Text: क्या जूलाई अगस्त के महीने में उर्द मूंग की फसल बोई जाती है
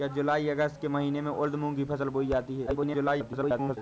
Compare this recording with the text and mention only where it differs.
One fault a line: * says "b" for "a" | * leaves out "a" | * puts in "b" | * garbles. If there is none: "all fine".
* garbles